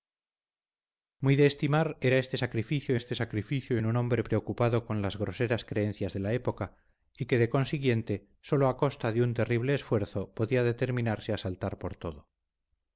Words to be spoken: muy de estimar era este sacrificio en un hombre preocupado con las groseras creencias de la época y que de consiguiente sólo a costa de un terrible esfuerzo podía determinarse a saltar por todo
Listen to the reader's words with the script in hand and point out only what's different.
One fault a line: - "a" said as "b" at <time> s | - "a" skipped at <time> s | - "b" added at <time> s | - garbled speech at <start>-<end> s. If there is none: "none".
- "este sacrificio" added at 2.9 s